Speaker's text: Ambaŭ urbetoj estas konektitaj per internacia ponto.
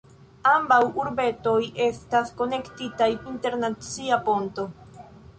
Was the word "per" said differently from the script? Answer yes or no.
yes